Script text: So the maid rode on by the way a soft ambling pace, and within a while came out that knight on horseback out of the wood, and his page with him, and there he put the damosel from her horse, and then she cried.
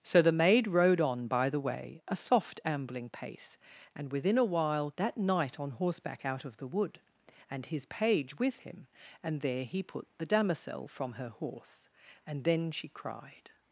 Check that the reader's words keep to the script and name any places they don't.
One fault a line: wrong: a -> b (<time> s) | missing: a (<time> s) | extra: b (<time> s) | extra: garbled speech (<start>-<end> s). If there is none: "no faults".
missing: came out (4.9 s)